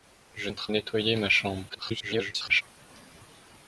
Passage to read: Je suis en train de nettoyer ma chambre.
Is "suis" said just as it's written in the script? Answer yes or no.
no